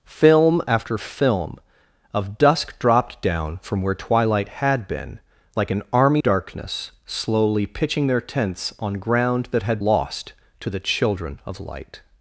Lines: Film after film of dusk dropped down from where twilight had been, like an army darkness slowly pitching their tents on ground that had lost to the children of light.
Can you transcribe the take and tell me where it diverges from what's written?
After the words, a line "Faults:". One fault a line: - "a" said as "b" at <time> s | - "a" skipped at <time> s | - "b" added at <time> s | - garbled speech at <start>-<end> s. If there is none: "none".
Film after film of dusk dropped down from where twilight had been, like an army darkness slowly pitching their tents on ground that had lost to the children of light.
Faults:
none